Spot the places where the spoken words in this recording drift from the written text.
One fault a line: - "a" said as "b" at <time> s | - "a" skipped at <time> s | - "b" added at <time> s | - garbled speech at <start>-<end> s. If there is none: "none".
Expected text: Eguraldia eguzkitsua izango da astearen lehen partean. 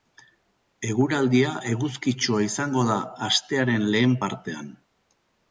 none